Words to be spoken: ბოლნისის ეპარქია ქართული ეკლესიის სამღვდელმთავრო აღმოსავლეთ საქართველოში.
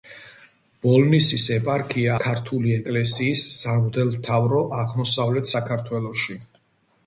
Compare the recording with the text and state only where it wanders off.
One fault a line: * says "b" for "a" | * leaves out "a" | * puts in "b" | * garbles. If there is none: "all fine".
all fine